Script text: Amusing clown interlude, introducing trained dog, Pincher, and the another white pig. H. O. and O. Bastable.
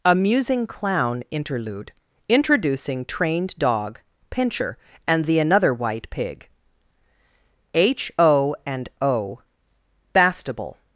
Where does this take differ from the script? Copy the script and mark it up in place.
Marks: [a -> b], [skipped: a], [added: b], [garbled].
Amusing clown interlude, introducing trained dog, Pincher, and the another white pig. H. O. and O. Bastable.